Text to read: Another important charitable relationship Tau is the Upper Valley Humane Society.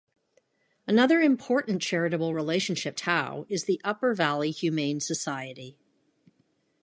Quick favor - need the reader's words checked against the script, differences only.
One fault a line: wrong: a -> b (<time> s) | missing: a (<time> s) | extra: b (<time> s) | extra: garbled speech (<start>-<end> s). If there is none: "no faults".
no faults